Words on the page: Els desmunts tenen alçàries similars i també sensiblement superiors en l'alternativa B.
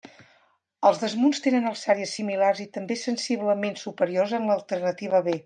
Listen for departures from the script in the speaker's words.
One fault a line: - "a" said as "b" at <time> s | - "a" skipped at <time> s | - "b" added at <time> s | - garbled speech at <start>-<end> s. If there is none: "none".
none